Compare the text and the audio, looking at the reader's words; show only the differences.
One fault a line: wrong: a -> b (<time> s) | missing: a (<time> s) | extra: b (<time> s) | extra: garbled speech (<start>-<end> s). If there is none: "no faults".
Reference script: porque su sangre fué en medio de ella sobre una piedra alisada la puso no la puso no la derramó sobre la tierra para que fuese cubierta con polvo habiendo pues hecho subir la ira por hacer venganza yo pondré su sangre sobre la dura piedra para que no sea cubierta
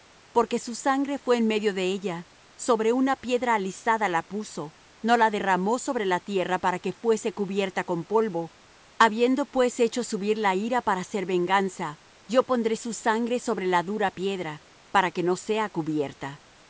missing: puso no la (5.3 s)
wrong: por -> para (10.8 s)